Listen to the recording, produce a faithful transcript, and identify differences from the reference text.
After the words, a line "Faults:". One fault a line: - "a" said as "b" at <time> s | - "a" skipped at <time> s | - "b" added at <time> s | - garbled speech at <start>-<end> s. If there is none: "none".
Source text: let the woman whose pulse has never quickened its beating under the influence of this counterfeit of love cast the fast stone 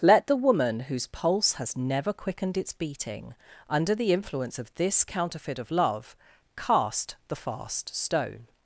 let the woman whose pulse has never quickened its beating under the influence of this counterfeit of love cast the fast stone
Faults:
none